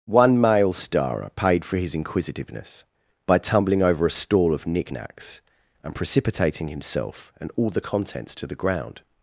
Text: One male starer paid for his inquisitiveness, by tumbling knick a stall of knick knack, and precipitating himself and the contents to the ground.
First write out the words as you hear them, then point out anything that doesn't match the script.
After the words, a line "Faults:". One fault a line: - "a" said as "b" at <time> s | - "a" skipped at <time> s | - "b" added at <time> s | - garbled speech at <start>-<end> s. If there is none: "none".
One male starer paid for his inquisitiveness, by tumbling over a stall of knick knacks, and precipitating himself and all the contents to the ground.
Faults:
- "knick" said as "over" at 3.8 s
- "knack" said as "knacks" at 4.9 s
- "all" added at 7.6 s